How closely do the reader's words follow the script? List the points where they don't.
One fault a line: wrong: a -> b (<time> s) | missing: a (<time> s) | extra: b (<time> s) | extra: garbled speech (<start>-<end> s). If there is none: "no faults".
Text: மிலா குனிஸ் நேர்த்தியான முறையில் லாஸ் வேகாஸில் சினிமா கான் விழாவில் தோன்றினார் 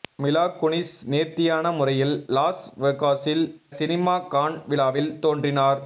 no faults